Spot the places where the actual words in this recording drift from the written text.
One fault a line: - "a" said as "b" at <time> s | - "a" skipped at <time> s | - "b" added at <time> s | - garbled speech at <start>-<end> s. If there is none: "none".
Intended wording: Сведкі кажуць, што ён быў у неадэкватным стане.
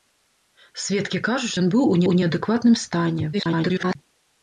- "што" skipped at 1.5 s
- "у" added at 2.1 s
- garbled speech at 3.3-4.0 s